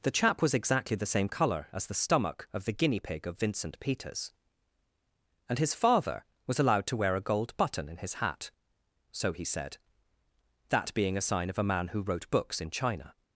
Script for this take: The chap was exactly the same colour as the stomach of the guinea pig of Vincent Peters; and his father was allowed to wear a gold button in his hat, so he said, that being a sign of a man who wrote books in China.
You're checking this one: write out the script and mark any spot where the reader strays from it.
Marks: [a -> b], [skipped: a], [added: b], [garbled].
The chap was exactly the same colour as the stomach of the guinea pig of Vincent Peters; and his father was allowed to wear a gold button in his hat, so he said, that being a sign of a man who wrote books in China.